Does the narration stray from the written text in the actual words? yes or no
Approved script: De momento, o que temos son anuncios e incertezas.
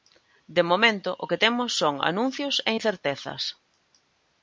no